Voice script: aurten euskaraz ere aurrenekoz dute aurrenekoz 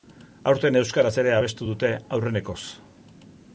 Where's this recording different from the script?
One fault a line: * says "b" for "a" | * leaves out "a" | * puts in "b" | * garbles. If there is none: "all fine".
* says "abestu" for "aurrenekoz"